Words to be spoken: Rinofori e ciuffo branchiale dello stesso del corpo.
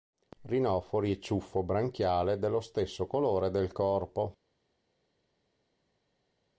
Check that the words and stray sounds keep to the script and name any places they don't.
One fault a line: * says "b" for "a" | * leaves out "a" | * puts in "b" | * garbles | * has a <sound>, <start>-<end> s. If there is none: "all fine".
* puts in "colore"